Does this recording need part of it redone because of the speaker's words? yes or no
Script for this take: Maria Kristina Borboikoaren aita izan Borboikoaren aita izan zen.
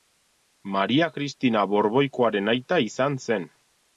yes